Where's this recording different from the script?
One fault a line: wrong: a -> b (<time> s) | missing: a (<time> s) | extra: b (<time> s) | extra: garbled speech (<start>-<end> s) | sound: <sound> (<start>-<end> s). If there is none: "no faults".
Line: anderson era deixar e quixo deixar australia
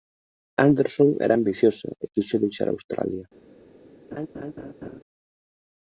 wrong: deixar -> ambiciosa (1.4 s)
sound: laugh (4.1-5.0 s)